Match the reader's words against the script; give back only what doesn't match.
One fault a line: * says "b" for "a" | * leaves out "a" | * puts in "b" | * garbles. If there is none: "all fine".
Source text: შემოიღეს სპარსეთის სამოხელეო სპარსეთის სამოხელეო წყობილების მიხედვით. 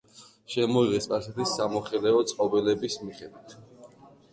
* leaves out "სპარსეთის სამოხელეო"